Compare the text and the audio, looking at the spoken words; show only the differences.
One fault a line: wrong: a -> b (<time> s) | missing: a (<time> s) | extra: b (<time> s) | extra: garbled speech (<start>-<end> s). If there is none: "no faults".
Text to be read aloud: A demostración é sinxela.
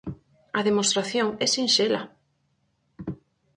no faults